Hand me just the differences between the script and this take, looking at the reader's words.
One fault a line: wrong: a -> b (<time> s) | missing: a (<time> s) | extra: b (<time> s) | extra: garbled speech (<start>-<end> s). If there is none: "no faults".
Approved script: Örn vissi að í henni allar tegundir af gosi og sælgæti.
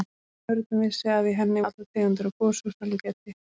no faults